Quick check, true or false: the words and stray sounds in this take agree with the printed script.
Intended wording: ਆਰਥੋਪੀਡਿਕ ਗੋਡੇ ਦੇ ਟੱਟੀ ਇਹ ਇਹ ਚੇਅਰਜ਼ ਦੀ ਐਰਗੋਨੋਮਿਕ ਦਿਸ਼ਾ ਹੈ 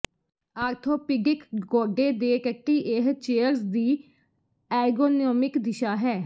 false